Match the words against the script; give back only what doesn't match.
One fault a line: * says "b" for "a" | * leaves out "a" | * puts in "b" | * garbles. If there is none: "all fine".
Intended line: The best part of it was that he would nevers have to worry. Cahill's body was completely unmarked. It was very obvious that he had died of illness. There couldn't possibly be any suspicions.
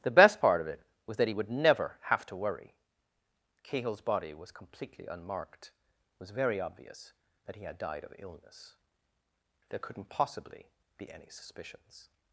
* says "never" for "nevers"